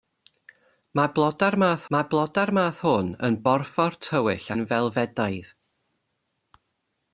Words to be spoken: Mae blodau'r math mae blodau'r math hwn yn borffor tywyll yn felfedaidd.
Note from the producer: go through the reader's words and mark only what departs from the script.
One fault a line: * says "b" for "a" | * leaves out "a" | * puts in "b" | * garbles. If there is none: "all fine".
all fine